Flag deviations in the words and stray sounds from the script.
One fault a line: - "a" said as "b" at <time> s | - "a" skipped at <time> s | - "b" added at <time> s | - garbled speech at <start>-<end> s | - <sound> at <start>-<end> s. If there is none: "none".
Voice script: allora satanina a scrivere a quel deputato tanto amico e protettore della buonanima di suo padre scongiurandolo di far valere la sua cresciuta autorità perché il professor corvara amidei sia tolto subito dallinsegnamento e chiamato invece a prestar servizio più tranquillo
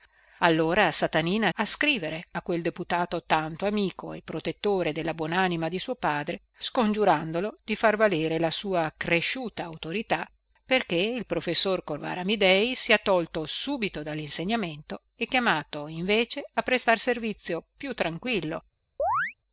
- chirp at 19.0-19.3 s